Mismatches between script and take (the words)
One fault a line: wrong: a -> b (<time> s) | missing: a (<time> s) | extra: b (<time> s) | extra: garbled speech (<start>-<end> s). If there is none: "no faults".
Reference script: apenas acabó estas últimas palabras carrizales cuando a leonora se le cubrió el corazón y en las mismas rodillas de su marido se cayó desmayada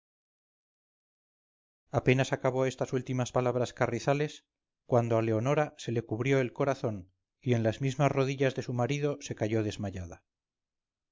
no faults